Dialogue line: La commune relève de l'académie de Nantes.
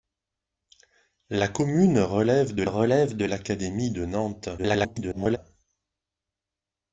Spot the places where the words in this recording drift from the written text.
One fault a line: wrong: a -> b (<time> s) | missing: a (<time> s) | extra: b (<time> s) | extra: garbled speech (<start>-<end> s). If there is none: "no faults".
extra: relève de (2.6 s)
extra: garbled speech (4.6-5.4 s)